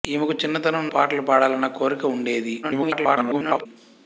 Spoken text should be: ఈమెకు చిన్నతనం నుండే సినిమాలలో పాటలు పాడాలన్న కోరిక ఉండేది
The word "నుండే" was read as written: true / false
false